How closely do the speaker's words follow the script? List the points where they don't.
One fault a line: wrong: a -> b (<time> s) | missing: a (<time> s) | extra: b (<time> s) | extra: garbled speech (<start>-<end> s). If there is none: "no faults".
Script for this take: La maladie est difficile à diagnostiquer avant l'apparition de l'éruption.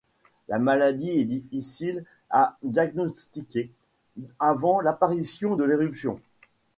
no faults